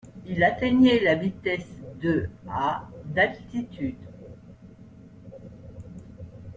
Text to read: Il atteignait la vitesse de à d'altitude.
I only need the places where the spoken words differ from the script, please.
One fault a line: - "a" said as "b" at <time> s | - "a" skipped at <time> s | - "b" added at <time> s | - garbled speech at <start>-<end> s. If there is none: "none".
none